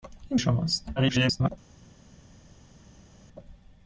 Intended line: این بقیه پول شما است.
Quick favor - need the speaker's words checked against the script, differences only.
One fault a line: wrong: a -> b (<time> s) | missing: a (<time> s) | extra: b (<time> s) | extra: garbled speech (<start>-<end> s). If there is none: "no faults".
missing: بقیه پول (0.4 s)
extra: garbled speech (1.0-1.5 s)